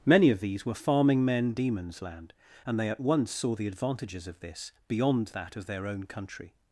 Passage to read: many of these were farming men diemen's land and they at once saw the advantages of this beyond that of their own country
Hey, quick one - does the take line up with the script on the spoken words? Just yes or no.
yes